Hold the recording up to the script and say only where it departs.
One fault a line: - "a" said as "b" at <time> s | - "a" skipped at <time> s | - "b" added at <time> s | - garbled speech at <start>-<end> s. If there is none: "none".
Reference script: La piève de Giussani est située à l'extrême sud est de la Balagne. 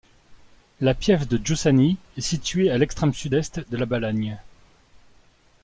none